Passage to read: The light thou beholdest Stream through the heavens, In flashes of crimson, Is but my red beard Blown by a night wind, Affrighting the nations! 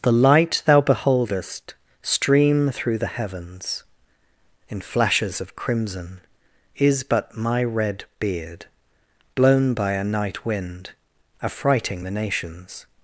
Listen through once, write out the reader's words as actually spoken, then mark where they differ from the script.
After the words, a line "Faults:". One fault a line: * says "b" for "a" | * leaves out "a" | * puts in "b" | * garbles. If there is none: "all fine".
The light thou beholdest Stream through the heavens, In flashes of crimson, Is but my red beard Blown by a night wind, Affrighting the nations!
Faults:
all fine